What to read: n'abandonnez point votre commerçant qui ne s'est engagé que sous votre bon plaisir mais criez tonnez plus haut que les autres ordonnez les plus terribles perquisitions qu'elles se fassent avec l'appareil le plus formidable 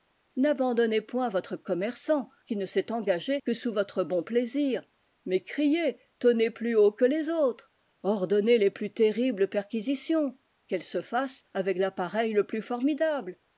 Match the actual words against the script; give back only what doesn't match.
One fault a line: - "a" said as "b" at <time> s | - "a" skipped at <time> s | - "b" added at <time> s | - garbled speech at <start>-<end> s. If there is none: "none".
none